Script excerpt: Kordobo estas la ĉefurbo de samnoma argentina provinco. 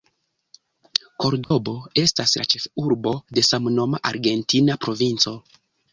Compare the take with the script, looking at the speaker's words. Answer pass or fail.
pass